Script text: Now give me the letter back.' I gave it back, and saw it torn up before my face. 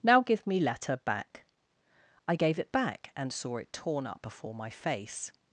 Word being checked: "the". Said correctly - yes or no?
no